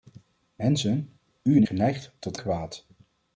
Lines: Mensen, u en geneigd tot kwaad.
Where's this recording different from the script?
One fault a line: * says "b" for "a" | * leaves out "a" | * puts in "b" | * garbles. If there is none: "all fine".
all fine